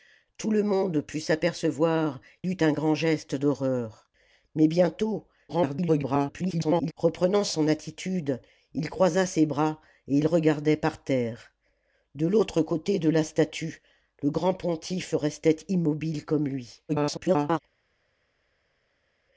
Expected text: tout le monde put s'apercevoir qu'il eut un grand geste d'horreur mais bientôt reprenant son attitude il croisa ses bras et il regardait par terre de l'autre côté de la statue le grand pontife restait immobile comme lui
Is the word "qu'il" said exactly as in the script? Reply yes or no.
no